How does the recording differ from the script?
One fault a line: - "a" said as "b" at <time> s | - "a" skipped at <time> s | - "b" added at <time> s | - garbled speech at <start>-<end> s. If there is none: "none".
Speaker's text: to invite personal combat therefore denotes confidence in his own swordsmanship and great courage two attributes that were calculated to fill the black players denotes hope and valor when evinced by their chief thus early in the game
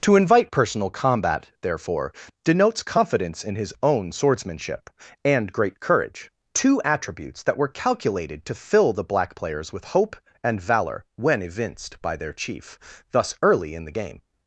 - "denotes" said as "with" at 9.7 s